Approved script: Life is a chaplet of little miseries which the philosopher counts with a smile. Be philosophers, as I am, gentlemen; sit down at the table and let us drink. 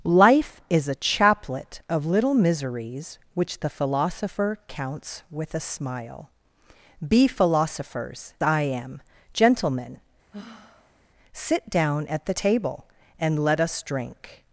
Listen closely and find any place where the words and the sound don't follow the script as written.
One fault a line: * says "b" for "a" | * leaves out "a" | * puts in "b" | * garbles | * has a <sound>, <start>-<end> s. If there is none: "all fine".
* leaves out "as"
* has a sigh, 10.3-11.0 s